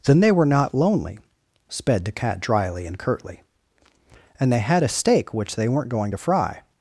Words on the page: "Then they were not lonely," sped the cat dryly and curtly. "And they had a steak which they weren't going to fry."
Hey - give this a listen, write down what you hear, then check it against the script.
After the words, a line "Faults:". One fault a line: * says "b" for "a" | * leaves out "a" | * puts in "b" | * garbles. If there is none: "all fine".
"Then they were not lonely," sped the cat dryly and curtly. "And they had a steak which they weren't going to fry."
Faults:
all fine